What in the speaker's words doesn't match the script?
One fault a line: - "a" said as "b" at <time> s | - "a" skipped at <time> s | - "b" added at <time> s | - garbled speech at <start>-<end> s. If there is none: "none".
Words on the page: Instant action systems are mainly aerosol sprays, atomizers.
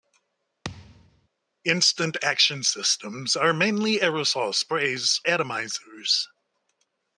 none